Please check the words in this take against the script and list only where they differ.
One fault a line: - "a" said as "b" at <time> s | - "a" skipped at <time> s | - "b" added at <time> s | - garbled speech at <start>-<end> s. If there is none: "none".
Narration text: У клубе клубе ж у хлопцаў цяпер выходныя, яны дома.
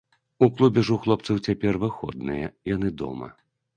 - "клубе" skipped at 0.8 s